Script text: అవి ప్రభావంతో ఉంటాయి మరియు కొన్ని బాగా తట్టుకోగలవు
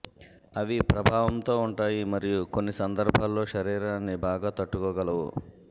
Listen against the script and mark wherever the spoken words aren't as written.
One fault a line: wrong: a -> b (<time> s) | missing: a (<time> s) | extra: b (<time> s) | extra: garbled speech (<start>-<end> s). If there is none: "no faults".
extra: సందర్భాల్లో శరీరాన్ని (2.7 s)